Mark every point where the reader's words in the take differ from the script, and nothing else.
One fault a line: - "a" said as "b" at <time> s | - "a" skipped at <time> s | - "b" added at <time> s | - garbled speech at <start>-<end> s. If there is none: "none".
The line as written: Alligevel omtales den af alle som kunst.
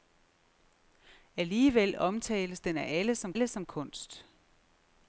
- "alle som" added at 3.3 s